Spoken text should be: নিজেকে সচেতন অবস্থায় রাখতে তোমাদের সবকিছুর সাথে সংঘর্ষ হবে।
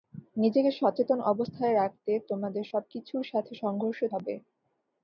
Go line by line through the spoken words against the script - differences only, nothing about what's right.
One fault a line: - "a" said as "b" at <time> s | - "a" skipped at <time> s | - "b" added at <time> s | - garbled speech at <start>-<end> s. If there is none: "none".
none